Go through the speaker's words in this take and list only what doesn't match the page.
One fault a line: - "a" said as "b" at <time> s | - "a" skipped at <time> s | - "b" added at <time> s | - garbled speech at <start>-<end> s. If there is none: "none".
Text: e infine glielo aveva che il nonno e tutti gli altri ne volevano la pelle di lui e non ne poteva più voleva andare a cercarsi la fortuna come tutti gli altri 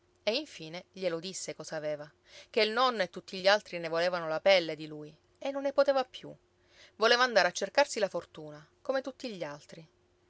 - "disse cosa" added at 1.2 s